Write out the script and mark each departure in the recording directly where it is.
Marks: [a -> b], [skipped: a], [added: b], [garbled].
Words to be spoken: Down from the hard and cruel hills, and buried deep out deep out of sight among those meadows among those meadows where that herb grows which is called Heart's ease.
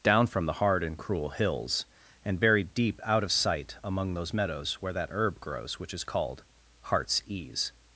Down from the hard and cruel hills, and buried deep out [skipped: deep out] of sight among those meadows [skipped: among those meadows] where that herb grows which is called Heart's ease.